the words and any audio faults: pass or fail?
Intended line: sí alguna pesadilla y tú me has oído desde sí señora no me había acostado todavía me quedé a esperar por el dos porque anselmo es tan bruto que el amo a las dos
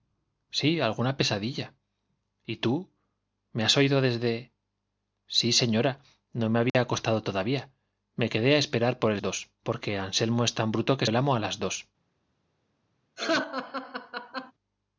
fail